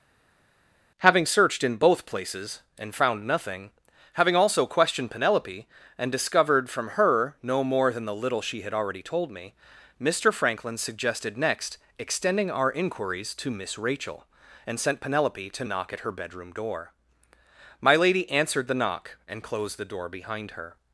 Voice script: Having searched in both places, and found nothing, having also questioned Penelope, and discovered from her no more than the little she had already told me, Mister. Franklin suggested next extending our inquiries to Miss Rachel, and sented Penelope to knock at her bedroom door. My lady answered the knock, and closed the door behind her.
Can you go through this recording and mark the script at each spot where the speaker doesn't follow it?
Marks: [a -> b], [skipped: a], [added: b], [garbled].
Having searched in both places, and found nothing, having also questioned Penelope, and discovered from her no more than the little she had already told me, Mister. Franklin suggested next extending our inquiries to Miss Rachel, and [sented -> sent] Penelope to knock at her bedroom door. My lady answered the knock, and closed the door behind her.